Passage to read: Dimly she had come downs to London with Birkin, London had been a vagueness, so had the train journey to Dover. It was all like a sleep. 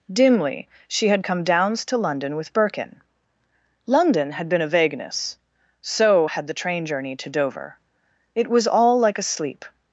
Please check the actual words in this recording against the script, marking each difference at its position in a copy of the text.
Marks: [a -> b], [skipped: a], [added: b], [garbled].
Dimly she had come downs to London with Birkin, London had been a vagueness, so had the train journey to Dover. It was all like a sleep.